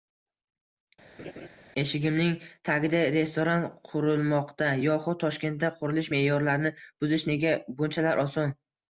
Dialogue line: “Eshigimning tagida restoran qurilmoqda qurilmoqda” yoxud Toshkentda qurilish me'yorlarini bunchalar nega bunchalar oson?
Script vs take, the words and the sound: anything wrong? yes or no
yes